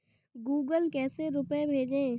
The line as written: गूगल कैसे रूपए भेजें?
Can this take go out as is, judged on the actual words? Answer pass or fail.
pass